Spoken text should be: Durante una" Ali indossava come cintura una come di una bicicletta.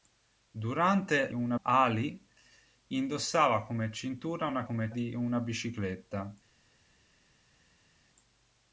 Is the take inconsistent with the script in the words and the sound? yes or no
no